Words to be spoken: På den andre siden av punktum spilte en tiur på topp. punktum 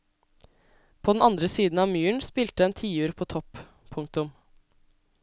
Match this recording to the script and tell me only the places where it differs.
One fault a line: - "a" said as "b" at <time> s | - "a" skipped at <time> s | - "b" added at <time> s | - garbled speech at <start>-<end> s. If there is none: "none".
- "punktum" said as "myren" at 1.9 s